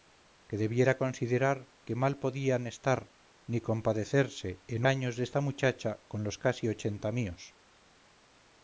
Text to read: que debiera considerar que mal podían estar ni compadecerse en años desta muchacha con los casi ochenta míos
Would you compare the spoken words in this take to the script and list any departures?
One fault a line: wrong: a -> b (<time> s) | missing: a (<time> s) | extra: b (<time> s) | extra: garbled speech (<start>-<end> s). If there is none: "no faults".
no faults